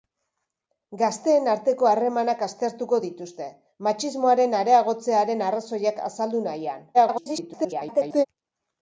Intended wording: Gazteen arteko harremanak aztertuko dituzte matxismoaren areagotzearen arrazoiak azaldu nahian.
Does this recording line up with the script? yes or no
no